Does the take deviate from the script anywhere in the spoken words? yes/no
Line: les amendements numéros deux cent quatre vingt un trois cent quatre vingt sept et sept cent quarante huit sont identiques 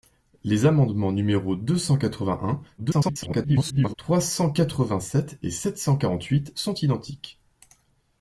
yes